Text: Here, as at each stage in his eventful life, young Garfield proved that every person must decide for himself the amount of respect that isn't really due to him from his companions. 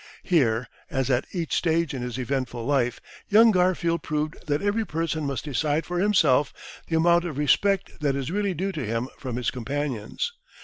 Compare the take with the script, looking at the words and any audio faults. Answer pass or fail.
fail